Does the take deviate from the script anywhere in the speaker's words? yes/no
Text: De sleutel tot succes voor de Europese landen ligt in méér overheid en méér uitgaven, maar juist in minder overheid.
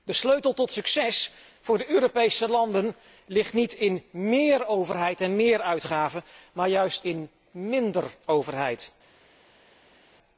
yes